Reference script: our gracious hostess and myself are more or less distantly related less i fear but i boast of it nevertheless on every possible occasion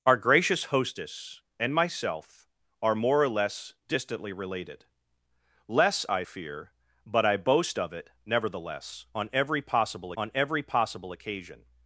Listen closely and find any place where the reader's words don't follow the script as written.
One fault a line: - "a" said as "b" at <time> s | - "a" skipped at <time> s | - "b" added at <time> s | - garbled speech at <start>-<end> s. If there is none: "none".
- "on every possible" added at 10.2 s